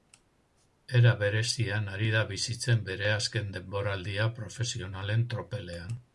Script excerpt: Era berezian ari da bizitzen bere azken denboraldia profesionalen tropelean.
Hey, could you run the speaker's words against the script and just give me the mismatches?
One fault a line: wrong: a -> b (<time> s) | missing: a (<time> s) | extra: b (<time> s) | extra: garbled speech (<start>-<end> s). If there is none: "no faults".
no faults